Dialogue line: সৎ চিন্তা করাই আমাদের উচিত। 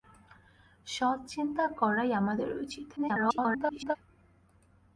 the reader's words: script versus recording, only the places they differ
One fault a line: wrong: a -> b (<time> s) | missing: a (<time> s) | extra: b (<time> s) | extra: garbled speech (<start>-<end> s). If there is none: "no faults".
extra: garbled speech (3.0-4.0 s)